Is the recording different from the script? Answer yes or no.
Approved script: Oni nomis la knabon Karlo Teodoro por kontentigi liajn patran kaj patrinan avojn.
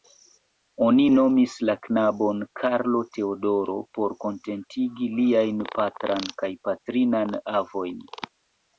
no